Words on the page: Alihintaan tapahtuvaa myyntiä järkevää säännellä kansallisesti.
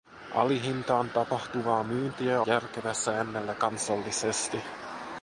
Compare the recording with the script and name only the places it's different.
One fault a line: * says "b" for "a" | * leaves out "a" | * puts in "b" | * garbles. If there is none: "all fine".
all fine